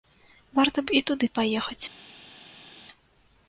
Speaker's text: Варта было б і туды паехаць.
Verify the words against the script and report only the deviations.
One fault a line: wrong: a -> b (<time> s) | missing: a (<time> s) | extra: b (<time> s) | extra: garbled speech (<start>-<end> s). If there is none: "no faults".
missing: было (0.8 s)